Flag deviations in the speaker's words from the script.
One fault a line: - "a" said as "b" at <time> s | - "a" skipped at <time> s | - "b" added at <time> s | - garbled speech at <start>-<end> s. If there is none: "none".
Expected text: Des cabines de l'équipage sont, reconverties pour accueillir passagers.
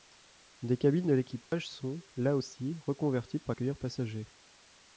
- "là aussi" added at 2.2 s